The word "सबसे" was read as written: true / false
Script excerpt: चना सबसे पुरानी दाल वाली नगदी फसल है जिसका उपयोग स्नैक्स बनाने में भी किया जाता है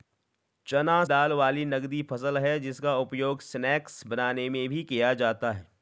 false